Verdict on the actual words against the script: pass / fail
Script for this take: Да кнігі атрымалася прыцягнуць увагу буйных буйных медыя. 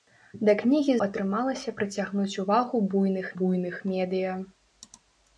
pass